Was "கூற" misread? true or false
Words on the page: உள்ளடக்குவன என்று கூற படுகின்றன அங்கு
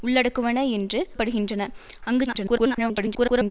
true